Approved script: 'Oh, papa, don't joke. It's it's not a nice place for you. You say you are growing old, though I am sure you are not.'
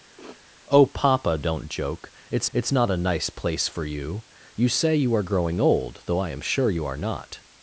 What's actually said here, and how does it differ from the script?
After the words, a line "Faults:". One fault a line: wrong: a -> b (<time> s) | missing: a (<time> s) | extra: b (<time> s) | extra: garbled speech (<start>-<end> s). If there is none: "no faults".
'Oh, papa, don't joke. It's it's not a nice place for you. You say you are growing old, though I am sure you are not.'
Faults:
no faults